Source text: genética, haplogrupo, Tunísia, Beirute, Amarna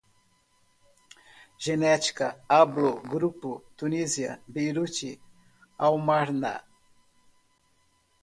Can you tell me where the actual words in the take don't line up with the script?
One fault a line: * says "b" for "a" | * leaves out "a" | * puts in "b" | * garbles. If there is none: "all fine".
all fine